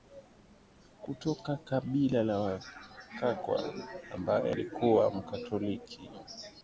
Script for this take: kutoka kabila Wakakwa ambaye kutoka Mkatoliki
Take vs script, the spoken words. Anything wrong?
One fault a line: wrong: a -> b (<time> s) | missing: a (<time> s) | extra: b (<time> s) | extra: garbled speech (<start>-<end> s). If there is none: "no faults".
extra: la (2.2 s)
wrong: kutoka -> alikuwa (4.5 s)